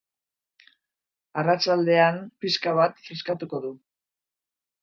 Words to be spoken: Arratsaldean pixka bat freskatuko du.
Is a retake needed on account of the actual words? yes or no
no